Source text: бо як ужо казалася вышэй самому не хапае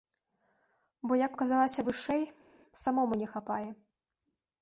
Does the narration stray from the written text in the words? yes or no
yes